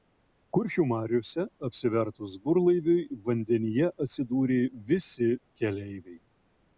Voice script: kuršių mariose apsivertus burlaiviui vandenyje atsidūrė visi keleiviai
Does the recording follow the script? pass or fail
pass